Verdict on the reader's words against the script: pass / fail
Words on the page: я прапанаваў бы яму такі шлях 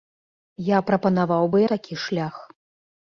fail